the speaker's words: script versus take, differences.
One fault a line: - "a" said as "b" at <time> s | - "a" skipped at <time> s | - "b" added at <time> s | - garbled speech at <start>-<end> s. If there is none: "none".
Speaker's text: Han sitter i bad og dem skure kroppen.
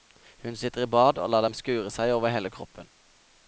- "Han" said as "Hun" at 0.4 s
- "lar" added at 1.3 s
- "seg over hele" added at 1.9 s